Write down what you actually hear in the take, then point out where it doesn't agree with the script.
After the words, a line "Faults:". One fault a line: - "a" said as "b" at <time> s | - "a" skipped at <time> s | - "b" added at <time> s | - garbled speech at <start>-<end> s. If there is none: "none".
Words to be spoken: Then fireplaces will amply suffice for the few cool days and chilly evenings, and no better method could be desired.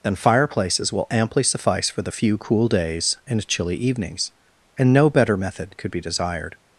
Then fireplaces will amply suffice for the few cool days and chilly evenings, and no better method could be desired.
Faults:
none